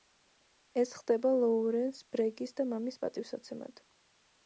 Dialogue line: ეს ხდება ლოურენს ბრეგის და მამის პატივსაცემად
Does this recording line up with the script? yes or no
yes